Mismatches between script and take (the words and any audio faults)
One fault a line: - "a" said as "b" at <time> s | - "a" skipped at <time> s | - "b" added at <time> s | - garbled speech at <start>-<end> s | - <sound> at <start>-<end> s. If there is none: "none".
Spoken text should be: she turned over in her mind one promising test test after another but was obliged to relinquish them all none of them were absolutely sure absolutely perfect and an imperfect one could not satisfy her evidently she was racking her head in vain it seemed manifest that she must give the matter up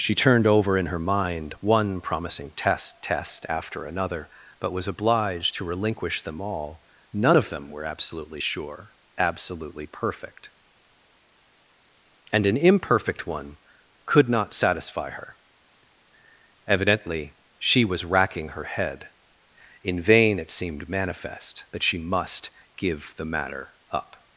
none